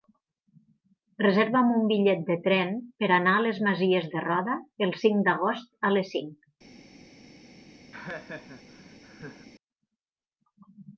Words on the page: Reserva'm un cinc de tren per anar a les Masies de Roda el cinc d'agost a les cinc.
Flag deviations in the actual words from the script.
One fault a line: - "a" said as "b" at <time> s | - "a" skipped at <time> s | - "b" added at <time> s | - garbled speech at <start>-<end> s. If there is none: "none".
- "cinc" said as "bitllet" at 1.9 s